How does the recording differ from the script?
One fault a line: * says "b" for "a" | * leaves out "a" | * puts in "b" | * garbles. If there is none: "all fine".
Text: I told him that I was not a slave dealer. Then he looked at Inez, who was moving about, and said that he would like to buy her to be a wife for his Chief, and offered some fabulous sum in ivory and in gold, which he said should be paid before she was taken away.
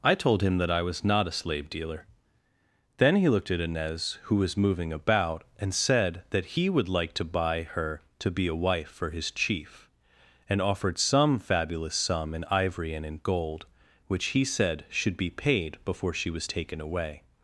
all fine